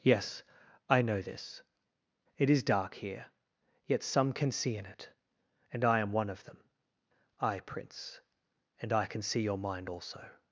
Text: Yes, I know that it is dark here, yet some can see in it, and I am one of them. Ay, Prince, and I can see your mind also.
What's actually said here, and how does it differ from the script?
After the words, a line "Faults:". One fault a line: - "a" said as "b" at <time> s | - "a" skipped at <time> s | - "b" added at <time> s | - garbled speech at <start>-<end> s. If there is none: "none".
Yes, I know this it is dark here, yet some can see in it, and I am one of them. Ay, Prince, and I can see your mind also.
Faults:
- "that" said as "this" at 1.2 s